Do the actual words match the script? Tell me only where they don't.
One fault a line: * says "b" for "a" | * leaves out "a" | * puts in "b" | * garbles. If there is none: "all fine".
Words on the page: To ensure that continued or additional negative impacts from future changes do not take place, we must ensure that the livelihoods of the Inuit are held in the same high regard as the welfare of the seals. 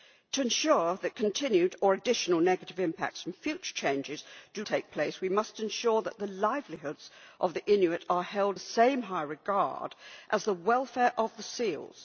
* leaves out "not"
* leaves out "in"